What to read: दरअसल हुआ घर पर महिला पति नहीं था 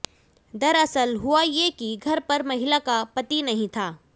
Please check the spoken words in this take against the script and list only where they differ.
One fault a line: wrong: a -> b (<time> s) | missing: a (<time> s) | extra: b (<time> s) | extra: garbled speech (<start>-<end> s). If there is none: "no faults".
extra: ये कि (1.4 s)
extra: का (2.8 s)